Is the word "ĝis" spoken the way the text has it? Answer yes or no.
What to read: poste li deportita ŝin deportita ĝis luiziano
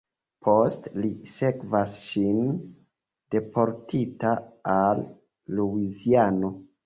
no